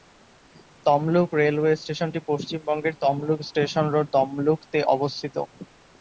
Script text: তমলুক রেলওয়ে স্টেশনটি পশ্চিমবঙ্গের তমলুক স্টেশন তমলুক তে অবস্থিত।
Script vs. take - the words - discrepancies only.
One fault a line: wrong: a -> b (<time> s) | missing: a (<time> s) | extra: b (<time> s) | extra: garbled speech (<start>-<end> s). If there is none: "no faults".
extra: রোড (3.9 s)